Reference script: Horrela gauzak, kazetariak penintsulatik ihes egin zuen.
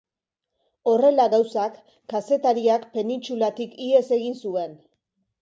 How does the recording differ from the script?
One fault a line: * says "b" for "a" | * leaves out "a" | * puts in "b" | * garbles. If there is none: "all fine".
all fine